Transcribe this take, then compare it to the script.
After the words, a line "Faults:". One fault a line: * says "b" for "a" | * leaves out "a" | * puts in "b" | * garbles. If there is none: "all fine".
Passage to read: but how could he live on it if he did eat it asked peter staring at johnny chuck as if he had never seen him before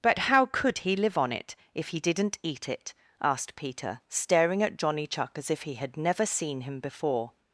but how could he live on it if he didn't eat it asked peter staring at johnny chuck as if he had never seen him before
Faults:
* says "didn't" for "did"